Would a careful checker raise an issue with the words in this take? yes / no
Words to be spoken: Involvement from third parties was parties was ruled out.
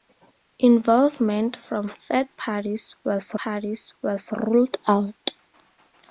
no